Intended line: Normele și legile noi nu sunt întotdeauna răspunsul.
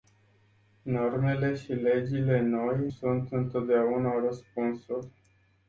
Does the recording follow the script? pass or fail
fail